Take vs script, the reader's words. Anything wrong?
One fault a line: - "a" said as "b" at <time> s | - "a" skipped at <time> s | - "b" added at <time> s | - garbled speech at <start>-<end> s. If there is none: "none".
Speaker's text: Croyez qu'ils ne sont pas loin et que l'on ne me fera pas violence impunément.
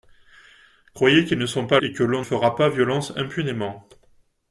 - "loin" skipped at 1.8 s
- "ne me" skipped at 2.2 s